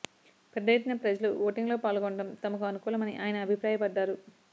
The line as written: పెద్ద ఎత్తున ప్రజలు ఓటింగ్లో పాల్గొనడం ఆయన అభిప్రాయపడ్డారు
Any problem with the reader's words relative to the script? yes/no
yes